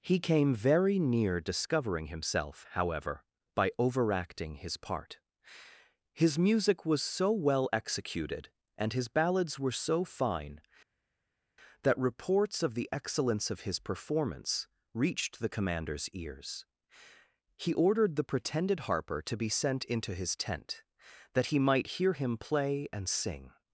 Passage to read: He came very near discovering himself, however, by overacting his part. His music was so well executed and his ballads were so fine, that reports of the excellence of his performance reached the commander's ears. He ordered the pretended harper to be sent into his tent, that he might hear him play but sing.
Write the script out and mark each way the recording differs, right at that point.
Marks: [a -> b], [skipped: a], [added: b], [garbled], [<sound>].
He came very near discovering himself, however, by overacting his part. His music was so well executed and his ballads were so fine, that reports of the excellence of his performance reached the commander's ears. He ordered the pretended harper to be sent into his tent, that he might hear him play [but -> and] sing.